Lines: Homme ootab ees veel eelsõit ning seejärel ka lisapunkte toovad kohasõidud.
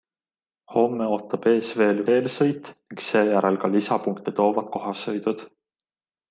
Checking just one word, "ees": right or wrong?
right